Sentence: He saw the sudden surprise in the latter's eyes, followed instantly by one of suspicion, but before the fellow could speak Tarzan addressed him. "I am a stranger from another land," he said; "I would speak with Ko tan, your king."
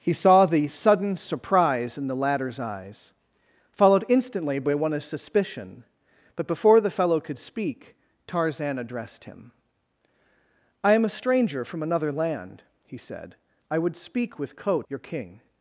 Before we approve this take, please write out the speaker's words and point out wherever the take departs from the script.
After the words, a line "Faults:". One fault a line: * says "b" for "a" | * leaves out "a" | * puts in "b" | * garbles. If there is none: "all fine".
He saw the sudden surprise in the latter's eyes, followed instantly by one of suspicion, but before the fellow could speak Tarzan addressed him. "I am a stranger from another land," he said; "I would speak with Ko your king."
Faults:
* leaves out "tan"